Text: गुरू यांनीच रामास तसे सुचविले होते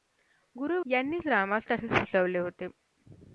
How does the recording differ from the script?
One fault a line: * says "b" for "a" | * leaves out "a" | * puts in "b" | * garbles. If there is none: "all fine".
all fine